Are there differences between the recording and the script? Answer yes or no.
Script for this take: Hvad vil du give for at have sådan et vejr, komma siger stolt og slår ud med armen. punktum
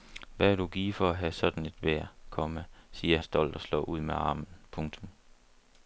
no